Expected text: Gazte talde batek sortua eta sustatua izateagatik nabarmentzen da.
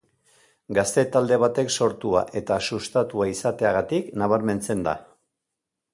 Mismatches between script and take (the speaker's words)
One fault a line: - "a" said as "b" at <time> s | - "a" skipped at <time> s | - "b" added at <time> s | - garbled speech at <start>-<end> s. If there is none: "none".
none